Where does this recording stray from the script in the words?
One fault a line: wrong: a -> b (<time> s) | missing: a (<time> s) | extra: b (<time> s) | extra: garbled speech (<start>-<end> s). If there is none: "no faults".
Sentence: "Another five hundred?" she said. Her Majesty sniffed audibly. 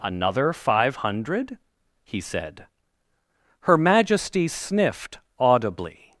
wrong: she -> he (2.0 s)